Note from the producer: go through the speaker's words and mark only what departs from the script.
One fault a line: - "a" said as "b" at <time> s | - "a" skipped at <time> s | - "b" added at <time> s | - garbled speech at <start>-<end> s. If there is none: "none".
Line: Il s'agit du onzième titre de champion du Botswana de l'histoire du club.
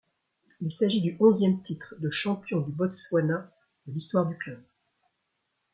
none